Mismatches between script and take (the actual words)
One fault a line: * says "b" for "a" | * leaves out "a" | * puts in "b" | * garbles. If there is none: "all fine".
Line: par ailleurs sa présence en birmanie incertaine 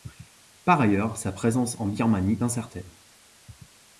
all fine